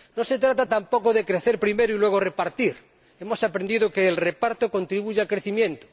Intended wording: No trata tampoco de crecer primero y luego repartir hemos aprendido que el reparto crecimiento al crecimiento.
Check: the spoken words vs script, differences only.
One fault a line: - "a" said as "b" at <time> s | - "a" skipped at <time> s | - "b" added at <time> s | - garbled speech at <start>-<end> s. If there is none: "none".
- "se" added at 0.2 s
- "crecimiento" said as "contribuye" at 4.7 s